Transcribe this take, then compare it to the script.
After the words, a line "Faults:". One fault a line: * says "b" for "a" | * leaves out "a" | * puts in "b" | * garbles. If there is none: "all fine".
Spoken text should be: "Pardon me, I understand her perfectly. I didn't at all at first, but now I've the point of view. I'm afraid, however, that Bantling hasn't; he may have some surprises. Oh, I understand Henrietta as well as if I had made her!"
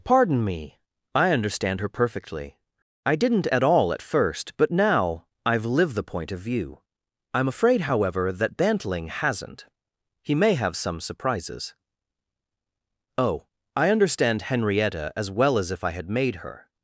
"Pardon me, I understand her perfectly. I didn't at all at first, but now I've lived the point of view. I'm afraid, however, that Bantling hasn't; he may have some surprises. Oh, I understand Henrietta as well as if I had made her!"
Faults:
* puts in "lived"